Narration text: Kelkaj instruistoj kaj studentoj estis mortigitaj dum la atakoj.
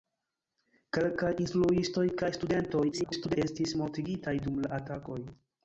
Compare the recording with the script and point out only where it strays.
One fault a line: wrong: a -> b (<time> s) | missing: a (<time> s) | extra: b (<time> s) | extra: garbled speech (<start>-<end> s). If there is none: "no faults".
extra: garbled speech (2.9-3.4 s)